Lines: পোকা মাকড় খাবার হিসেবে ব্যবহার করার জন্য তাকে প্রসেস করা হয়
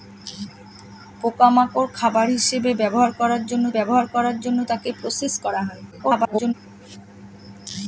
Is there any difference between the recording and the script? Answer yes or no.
yes